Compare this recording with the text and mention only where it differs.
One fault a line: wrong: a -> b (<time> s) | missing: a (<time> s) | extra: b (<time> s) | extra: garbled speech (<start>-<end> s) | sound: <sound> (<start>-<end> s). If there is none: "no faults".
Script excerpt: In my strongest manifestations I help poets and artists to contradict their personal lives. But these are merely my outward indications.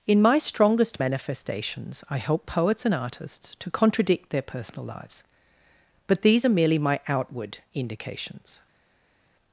no faults